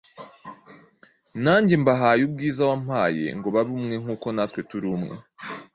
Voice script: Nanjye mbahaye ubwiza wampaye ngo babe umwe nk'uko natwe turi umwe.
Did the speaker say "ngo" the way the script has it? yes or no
yes